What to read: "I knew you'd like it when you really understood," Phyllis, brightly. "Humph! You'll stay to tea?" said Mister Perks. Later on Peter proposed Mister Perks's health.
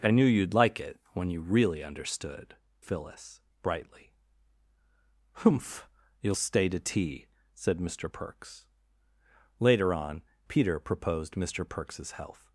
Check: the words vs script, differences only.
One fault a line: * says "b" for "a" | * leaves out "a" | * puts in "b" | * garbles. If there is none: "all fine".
all fine